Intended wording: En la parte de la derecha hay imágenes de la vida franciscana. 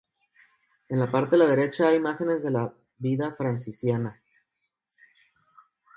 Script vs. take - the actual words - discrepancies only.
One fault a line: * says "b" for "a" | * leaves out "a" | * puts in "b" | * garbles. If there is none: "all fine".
all fine